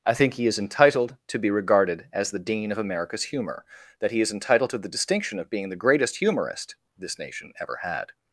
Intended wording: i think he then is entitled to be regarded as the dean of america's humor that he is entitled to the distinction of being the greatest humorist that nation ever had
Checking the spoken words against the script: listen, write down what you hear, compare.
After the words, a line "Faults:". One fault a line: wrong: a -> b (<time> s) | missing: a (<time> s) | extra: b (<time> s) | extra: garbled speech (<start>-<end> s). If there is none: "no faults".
i think he is entitled to be regarded as the dean of america's humor that he is entitled to the distinction of being the greatest humorist this nation ever had
Faults:
missing: then (0.5 s)
wrong: that -> this (7.0 s)